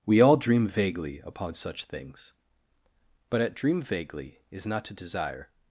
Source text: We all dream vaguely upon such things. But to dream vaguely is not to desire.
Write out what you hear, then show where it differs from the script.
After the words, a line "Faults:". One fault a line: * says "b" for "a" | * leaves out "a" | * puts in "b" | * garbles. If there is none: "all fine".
We all dream vaguely upon such things. But at dream vaguely is not to desire.
Faults:
* says "at" for "to"